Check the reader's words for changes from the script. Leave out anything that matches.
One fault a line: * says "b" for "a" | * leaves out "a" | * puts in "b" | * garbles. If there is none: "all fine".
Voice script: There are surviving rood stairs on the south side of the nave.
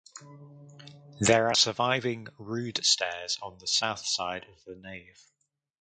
all fine